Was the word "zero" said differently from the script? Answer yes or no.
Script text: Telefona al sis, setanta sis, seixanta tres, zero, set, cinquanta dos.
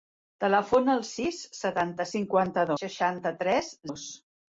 yes